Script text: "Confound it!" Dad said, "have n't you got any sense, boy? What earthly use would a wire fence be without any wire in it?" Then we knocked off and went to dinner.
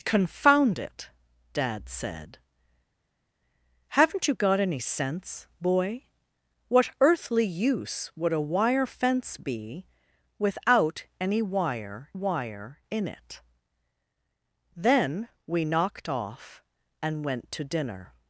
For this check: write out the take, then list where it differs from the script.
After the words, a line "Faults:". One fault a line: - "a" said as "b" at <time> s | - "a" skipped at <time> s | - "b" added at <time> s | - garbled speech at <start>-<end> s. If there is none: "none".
"Confound it!" Dad said, "have n't you got any sense, boy? What earthly use would a wire fence be without any wire wire in it?" Then we knocked off and went to dinner.
Faults:
- "wire" added at 12.1 s